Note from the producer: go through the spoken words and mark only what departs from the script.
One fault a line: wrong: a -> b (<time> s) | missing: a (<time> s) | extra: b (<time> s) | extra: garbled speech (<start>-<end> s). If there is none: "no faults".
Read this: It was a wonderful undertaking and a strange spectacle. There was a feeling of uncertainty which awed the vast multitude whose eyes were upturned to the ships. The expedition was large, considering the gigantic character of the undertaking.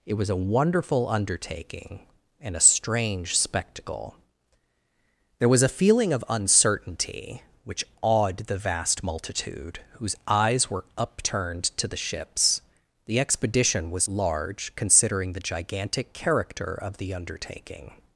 no faults